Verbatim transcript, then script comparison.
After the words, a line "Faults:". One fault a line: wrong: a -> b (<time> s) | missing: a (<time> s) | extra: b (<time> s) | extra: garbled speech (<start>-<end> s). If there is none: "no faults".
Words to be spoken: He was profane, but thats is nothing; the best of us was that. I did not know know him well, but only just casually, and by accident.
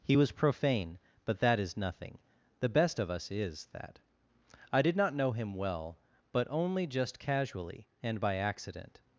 He was profane, but that is nothing; the best of us is that. I did not know him well, but only just casually, and by accident.
Faults:
wrong: thats -> that (1.4 s)
wrong: was -> is (3.3 s)
missing: know (5.3 s)